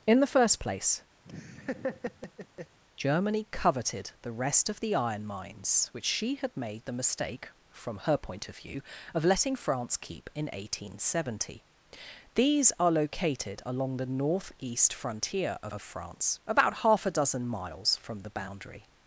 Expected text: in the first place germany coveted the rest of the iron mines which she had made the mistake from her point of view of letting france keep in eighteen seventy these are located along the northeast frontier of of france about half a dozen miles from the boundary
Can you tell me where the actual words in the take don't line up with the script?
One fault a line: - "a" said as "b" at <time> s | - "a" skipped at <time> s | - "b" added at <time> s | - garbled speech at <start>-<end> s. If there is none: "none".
none